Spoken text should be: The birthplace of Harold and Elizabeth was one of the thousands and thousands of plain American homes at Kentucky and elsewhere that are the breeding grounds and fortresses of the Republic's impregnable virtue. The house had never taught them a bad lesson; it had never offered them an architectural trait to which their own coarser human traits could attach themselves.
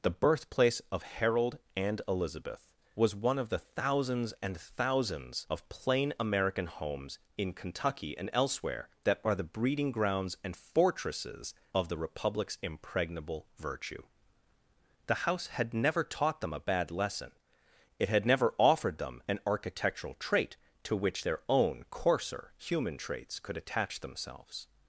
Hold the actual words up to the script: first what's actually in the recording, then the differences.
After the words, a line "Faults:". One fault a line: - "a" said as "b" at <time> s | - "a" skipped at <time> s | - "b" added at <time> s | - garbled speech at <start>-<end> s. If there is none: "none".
The birthplace of Harold and Elizabeth was one of the thousands and thousands of plain American homes in Kentucky and elsewhere that are the breeding grounds and fortresses of the Republic's impregnable virtue. The house had never taught them a bad lesson; it had never offered them an architectural trait to which their own coarser human traits could attach themselves.
Faults:
- "at" said as "in" at 7.4 s